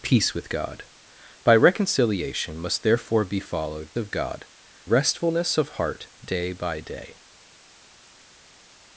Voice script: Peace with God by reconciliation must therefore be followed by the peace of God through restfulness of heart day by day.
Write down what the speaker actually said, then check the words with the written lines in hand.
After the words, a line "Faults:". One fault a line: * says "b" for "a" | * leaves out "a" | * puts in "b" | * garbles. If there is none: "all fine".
Peace with God by reconciliation must therefore be followed of God restfulness of heart day by day.
Faults:
* leaves out "by the peace"
* leaves out "through"